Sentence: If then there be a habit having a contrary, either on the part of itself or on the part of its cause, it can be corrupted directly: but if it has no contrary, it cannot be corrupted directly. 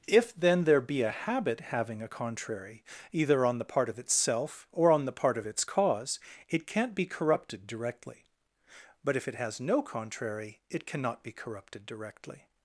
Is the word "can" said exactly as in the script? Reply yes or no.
no